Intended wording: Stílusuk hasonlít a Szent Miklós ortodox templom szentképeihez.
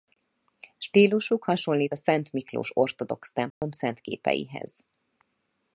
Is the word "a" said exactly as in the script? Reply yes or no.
yes